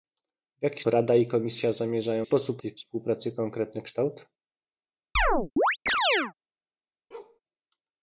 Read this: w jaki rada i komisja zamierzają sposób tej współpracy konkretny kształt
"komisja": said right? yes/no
yes